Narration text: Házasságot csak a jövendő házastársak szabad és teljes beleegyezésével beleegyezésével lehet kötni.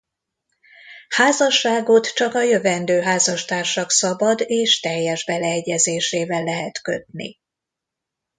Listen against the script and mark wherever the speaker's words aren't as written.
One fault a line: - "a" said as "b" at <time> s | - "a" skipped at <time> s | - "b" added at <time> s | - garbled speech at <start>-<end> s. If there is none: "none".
- "beleegyezésével" skipped at 6.4 s